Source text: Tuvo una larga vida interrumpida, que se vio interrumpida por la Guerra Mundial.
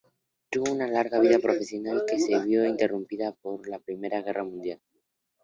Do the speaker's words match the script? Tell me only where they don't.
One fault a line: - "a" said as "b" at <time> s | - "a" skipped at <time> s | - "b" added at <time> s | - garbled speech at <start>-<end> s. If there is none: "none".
- "interrumpida" said as "profesional" at 1.4 s
- "Primera" added at 3.8 s